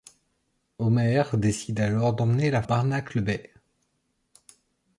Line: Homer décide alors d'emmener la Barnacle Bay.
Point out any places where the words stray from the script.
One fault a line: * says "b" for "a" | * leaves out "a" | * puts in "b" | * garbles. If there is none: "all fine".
all fine